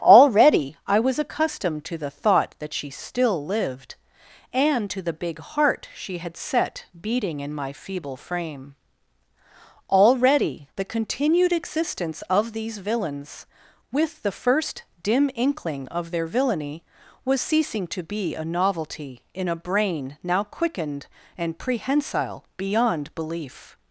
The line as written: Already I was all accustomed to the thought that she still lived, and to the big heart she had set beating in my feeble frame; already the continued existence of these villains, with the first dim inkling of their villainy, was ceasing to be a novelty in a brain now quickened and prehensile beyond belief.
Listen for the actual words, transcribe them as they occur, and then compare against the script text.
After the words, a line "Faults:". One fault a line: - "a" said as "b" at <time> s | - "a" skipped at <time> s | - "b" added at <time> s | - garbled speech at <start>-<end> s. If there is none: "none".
Already I was accustomed to the thought that she still lived, and to the big heart she had set beating in my feeble frame; already the continued existence of these villains, with the first dim inkling of their villainy, was ceasing to be a novelty in a brain now quickened and prehensile beyond belief.
Faults:
- "all" skipped at 1.2 s